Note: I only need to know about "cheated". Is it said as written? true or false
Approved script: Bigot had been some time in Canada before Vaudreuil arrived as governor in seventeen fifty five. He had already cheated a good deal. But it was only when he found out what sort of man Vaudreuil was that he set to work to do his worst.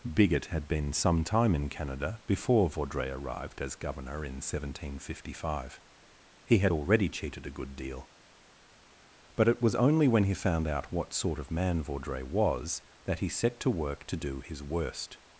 true